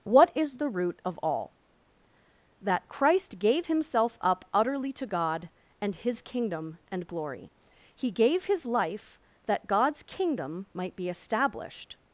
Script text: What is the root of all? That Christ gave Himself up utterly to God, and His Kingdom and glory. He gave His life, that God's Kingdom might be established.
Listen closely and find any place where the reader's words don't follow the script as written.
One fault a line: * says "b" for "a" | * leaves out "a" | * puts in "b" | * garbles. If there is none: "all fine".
all fine